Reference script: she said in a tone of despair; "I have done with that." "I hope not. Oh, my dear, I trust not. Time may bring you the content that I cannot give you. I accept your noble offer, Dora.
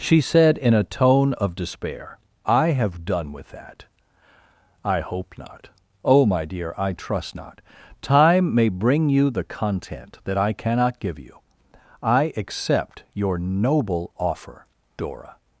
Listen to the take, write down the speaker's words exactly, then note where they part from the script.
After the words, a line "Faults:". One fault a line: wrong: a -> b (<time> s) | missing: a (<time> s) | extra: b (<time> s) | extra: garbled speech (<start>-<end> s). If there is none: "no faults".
she said in a tone of despair; "I have done with that." "I hope not. Oh, my dear, I trust not. Time may bring you the content that I cannot give you. I accept your noble offer, Dora.
Faults:
no faults